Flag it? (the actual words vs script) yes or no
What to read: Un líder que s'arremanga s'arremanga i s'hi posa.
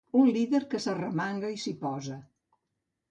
yes